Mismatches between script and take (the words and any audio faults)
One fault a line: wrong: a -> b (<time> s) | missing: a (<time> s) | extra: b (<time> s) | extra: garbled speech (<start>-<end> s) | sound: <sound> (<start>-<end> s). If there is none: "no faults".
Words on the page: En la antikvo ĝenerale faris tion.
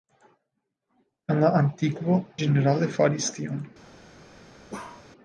sound: bark (4.7-5.1 s)